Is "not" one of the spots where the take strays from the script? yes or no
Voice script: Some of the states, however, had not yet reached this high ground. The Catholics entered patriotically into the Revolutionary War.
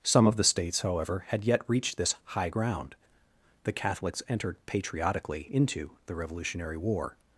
yes